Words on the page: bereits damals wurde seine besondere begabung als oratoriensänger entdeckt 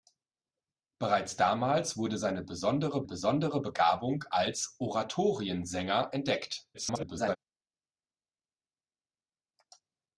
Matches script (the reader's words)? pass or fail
fail